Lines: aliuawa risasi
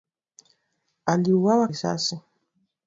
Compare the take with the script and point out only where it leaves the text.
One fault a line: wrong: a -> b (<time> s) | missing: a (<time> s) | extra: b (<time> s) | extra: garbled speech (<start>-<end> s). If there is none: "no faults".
no faults